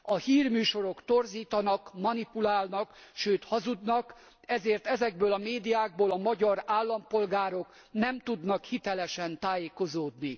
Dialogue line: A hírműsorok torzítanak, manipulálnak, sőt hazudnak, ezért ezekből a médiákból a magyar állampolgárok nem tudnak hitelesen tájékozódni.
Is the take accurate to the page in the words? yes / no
yes